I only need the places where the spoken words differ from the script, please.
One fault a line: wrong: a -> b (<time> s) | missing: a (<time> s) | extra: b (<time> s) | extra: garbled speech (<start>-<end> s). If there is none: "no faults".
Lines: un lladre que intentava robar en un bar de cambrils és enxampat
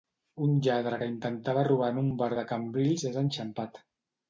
no faults